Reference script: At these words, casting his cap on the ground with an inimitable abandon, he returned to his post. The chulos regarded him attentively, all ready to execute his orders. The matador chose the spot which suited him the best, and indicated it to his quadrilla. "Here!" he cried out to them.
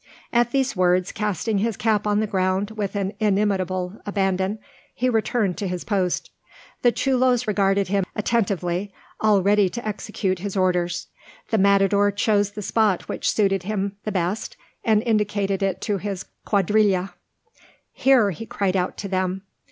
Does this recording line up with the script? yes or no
yes